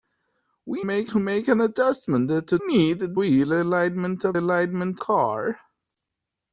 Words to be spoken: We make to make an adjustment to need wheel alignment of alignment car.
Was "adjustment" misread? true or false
false